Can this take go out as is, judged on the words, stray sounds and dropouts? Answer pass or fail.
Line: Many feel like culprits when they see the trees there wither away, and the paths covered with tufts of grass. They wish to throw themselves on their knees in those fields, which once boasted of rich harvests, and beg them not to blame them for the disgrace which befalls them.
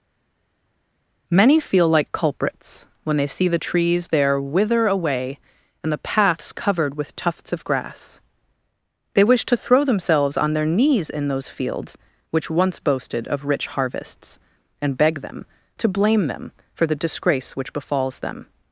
fail